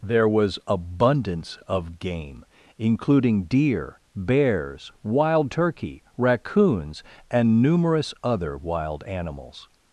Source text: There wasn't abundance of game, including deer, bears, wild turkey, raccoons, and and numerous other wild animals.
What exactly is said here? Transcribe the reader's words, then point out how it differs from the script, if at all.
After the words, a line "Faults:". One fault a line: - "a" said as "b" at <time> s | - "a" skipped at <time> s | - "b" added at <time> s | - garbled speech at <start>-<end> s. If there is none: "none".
There was abundance of game, including deer, bears, wild turkey, raccoons, and numerous other wild animals.
Faults:
- "wasn't" said as "was" at 0.3 s
- "and" skipped at 7.6 s